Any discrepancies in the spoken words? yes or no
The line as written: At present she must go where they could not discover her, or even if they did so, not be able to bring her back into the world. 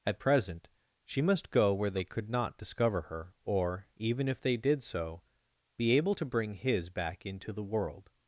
yes